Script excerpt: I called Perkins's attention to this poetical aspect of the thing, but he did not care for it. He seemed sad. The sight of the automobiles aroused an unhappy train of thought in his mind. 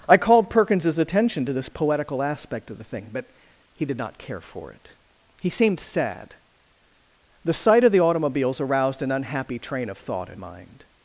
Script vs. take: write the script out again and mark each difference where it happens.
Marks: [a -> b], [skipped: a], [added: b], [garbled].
I called Perkins's attention to this poetical aspect of the thing, but he did not care for it. He seemed sad. The sight of the automobiles aroused an unhappy train of thought in [skipped: his] mind.